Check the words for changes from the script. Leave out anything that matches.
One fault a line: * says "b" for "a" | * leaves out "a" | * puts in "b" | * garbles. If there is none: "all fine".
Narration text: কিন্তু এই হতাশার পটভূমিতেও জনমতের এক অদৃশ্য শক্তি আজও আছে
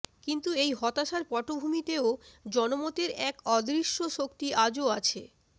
all fine